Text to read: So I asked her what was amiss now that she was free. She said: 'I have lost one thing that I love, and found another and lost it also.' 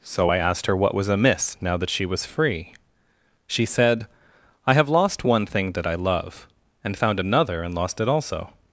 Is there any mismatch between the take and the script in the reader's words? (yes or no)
no